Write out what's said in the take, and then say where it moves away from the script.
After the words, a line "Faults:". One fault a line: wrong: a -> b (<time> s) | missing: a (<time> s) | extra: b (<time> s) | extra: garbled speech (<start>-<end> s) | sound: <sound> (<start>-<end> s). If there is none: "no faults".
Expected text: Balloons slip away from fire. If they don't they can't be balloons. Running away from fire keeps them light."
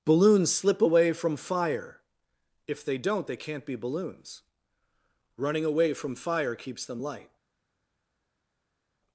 Balloons slip away from fire. If they don't they can't be balloons. Running away from fire keeps them light."
Faults:
no faults